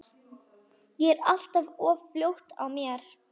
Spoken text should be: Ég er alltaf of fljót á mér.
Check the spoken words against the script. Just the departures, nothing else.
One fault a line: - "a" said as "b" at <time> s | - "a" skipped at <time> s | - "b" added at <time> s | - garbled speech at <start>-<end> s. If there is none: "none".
none